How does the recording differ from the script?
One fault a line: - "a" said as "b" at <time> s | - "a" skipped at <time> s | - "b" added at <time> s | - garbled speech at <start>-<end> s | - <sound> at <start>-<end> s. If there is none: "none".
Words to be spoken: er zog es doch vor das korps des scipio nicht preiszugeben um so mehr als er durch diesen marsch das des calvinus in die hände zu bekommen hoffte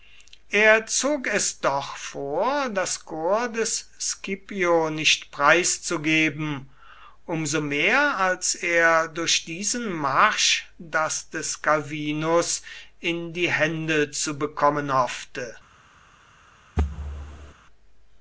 - thud at 16.8-17.5 s